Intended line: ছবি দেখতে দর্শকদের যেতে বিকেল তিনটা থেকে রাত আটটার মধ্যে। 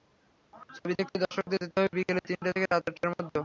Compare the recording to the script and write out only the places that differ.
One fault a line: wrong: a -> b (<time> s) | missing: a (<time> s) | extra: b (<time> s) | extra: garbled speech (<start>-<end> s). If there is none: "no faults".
extra: হবে (1.8 s)